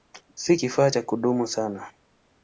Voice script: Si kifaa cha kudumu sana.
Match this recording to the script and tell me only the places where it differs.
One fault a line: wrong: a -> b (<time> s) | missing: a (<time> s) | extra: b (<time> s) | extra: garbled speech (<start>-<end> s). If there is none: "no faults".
no faults